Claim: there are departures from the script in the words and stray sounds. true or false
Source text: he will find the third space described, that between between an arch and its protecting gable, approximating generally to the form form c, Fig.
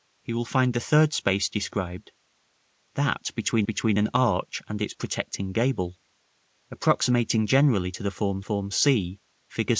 false